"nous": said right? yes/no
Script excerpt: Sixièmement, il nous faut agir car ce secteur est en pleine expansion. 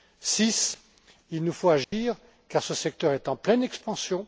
yes